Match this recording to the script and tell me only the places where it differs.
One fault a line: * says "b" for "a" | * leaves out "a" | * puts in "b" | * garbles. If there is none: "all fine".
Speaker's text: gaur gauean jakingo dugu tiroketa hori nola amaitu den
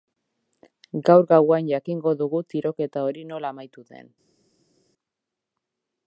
all fine